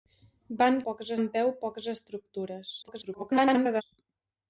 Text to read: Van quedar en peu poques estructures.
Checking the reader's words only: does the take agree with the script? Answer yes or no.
no